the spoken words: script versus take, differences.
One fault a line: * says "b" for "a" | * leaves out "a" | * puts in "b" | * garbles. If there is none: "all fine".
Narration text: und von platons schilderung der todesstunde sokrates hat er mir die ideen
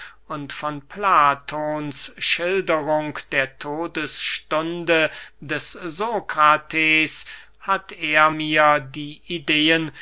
* puts in "des"